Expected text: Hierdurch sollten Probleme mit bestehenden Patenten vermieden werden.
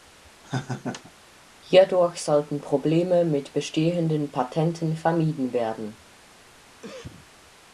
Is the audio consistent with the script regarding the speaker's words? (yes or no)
yes